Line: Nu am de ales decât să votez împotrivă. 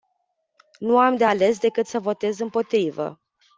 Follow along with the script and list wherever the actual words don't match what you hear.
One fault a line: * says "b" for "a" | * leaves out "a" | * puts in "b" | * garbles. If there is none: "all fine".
all fine